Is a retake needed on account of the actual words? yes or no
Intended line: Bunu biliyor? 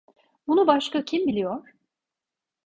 yes